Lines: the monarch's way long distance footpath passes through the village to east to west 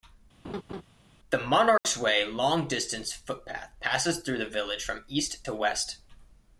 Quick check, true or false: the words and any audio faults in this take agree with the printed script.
false